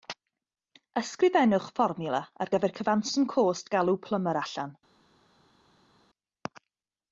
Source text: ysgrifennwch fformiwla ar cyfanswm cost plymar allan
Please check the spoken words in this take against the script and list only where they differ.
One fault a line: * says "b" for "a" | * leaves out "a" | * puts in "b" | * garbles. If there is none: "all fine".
* puts in "gyfer"
* puts in "galw"